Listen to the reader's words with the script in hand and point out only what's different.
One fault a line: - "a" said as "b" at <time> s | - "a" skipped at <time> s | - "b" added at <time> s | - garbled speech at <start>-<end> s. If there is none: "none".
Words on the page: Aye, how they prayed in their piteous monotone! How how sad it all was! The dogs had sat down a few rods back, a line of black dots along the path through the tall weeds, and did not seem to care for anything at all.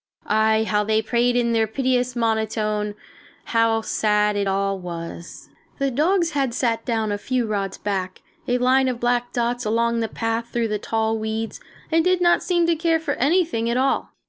- "how" skipped at 3.8 s